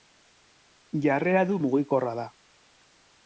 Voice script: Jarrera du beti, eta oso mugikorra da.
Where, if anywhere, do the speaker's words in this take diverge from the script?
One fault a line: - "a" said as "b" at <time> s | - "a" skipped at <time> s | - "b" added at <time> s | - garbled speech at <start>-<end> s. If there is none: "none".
- "beti eta oso" skipped at 1.6 s